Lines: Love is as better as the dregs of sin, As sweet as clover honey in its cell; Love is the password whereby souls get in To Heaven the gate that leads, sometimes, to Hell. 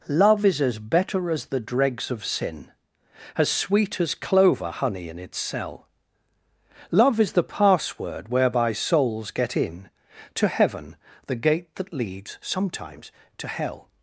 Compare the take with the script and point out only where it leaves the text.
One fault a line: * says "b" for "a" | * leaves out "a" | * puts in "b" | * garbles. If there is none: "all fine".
all fine